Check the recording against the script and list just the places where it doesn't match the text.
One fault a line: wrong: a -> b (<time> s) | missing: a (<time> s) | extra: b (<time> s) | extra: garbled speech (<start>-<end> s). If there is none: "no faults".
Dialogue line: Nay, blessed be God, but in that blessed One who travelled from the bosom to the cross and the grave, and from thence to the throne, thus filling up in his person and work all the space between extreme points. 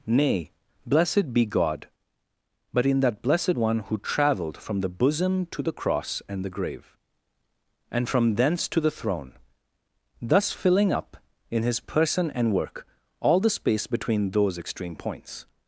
extra: those (14.3 s)